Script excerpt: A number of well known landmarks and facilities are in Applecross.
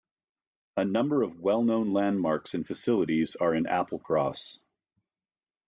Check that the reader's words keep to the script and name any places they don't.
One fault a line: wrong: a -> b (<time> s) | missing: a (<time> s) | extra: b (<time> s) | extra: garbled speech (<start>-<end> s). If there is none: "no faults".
no faults